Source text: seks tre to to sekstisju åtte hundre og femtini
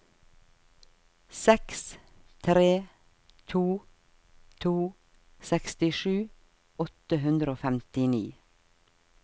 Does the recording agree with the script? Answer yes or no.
yes